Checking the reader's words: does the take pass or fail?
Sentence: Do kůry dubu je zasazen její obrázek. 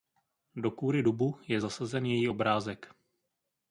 pass